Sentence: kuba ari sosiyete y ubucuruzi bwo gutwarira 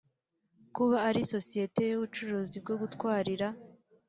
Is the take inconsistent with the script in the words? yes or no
no